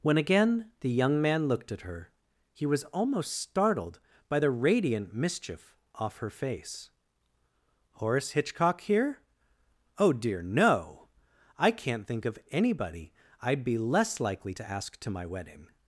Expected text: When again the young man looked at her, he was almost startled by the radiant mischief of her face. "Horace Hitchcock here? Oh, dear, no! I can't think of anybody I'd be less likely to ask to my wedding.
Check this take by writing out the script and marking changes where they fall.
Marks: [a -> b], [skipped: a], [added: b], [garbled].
When again the young man looked at her, he was almost startled by the radiant mischief [of -> off] her face. "Horace Hitchcock here? Oh, dear, no! I can't think of anybody I'd be less likely to ask to my wedding.